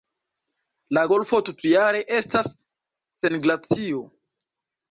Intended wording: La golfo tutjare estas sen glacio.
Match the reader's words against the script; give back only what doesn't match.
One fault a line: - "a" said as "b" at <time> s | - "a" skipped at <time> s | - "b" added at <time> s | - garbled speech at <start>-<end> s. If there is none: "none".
none